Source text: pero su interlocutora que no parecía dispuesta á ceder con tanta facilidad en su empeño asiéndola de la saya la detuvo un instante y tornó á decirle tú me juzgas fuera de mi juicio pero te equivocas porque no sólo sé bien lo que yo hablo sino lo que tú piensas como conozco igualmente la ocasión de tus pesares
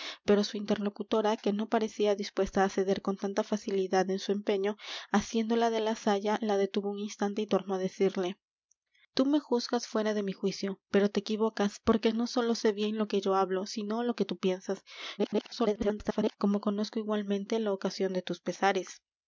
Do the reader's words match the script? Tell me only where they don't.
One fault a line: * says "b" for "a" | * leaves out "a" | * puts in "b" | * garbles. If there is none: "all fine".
* garbles